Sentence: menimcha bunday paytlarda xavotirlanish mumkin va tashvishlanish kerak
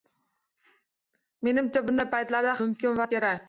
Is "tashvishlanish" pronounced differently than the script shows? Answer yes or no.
yes